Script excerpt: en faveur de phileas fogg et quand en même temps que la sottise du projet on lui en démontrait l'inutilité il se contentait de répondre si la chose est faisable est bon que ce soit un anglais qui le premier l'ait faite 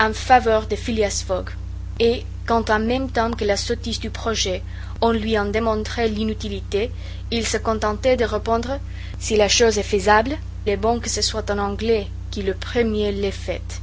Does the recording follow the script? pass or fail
pass